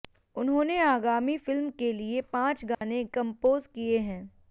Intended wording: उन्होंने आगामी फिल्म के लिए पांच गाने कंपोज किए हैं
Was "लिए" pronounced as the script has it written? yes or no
yes